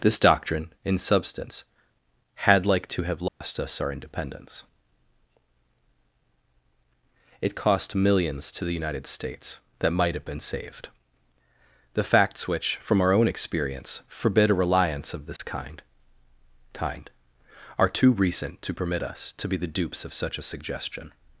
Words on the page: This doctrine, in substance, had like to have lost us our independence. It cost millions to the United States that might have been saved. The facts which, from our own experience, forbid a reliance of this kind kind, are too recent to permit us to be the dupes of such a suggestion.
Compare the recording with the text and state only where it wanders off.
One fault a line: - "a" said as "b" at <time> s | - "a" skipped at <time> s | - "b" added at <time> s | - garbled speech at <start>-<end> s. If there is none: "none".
none